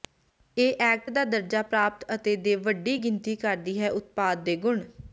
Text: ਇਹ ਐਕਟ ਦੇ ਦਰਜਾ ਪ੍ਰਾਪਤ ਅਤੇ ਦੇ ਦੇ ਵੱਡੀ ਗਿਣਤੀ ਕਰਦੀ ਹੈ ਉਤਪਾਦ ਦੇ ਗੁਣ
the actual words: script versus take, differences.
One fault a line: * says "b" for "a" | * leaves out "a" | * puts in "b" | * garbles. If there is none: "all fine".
* says "ਦਾ" for "ਦੇ"
* leaves out "ਦੇ"